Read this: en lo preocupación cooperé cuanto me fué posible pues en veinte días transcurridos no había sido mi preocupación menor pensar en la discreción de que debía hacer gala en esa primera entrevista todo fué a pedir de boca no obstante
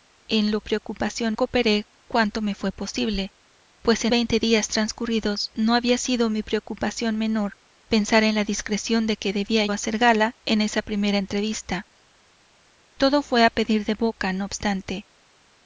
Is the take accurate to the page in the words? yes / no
yes